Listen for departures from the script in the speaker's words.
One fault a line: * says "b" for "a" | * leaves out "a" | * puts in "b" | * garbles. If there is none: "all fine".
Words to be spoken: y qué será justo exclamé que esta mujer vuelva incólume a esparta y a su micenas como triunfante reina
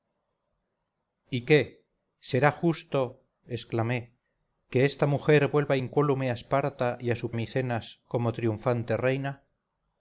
all fine